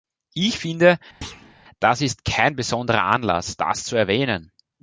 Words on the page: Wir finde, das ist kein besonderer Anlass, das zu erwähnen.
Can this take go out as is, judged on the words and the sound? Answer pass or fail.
fail